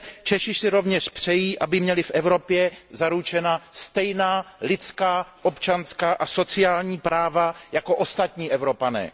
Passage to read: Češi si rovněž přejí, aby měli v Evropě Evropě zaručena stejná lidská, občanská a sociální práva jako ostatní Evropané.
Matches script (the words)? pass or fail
fail